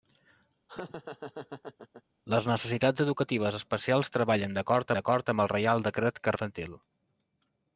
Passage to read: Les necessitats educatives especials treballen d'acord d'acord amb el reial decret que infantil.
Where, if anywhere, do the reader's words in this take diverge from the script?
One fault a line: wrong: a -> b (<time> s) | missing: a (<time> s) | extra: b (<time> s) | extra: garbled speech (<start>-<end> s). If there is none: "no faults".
no faults